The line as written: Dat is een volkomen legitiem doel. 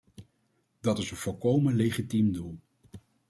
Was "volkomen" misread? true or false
false